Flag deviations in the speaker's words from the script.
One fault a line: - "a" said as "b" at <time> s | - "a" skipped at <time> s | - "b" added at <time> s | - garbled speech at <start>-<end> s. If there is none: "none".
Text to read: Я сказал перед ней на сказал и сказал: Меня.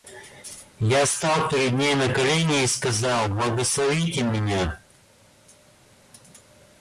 - "сказал" said as "стал" at 1.1 s
- "сказал" said as "колени" at 2.1 s
- "Благословите" added at 3.3 s